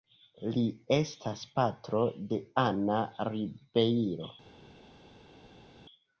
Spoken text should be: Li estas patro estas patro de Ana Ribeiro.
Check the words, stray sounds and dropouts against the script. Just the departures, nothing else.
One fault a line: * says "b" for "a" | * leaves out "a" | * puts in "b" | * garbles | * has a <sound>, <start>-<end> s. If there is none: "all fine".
* leaves out "estas patro"